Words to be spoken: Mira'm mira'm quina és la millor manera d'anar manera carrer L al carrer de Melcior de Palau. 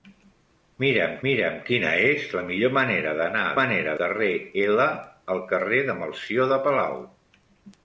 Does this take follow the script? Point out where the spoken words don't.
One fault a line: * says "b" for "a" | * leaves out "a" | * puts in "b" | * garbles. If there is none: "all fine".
all fine